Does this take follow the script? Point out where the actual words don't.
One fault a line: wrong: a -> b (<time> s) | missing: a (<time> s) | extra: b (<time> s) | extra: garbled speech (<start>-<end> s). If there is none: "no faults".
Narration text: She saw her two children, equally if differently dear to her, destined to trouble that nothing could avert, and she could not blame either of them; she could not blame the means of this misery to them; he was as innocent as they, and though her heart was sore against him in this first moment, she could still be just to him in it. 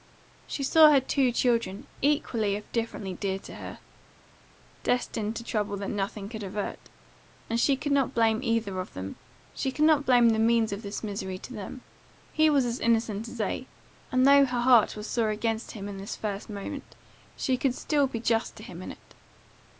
no faults